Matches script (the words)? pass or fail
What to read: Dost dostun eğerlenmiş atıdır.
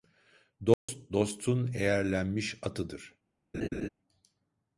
pass